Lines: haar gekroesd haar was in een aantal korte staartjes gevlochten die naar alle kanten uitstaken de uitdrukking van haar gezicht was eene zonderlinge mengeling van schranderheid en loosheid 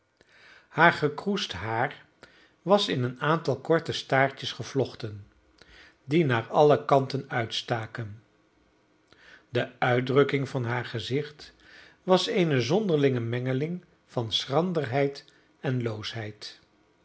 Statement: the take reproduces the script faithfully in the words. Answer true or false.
true